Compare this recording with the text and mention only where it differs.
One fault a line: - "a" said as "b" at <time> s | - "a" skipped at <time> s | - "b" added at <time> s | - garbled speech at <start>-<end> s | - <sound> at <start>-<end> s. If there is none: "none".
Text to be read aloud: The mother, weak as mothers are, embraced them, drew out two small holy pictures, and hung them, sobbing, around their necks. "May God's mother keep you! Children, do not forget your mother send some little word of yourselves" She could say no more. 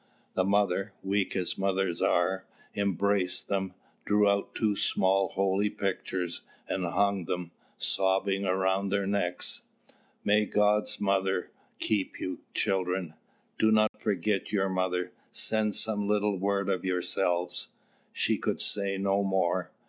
- dropout at 13.9-13.9 s